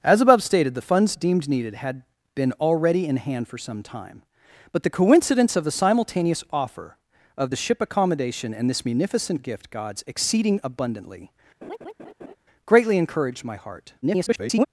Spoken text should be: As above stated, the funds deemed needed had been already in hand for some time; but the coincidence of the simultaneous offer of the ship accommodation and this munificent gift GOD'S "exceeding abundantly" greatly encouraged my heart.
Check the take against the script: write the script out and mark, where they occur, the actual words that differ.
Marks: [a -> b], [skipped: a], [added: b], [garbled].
As above stated, the funds deemed needed had been already in hand for some time; but the coincidence of the simultaneous offer of the ship accommodation and this munificent gift GOD'S "exceeding abundantly" greatly encouraged my heart. [garbled]